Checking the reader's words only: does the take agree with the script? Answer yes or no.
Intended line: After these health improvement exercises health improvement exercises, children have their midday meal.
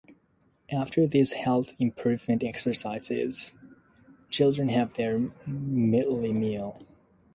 no